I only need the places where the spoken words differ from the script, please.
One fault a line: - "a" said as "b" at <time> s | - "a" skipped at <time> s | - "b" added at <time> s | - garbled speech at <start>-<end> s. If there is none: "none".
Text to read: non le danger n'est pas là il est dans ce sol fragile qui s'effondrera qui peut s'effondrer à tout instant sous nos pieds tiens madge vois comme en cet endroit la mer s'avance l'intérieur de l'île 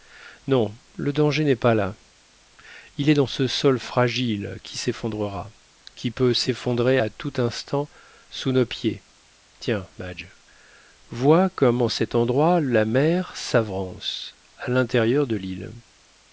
- "à" added at 14.6 s